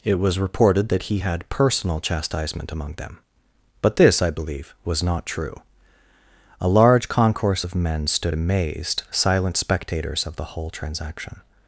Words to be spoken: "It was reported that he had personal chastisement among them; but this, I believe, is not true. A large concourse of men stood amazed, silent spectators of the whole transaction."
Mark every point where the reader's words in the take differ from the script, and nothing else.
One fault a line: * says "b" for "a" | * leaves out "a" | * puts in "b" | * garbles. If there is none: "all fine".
* says "was" for "is"